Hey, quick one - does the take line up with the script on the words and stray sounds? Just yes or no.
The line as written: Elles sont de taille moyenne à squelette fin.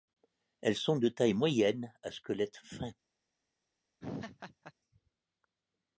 no